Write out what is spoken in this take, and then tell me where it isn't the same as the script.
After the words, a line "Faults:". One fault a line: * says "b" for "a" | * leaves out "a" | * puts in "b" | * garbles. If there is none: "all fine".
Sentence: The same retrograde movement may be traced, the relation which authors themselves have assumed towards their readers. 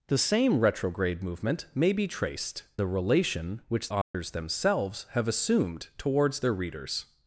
The same retrograde movement may be traced, the relation which authors themselves have assumed towards their readers.
Faults:
all fine